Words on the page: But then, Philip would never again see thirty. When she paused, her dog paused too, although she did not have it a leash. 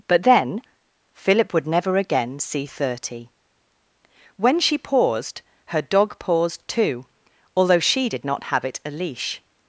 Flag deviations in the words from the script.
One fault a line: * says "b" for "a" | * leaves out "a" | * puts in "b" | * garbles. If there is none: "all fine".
all fine